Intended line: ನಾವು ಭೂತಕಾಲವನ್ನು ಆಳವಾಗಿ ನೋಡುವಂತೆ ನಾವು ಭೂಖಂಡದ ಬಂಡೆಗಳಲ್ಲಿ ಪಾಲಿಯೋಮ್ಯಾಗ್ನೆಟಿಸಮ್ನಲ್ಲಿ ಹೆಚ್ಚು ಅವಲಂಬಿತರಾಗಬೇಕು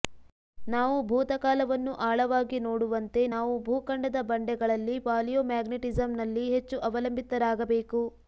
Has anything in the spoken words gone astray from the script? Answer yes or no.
no